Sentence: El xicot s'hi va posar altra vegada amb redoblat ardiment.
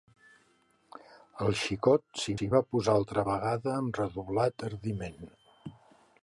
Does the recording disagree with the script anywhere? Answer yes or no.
yes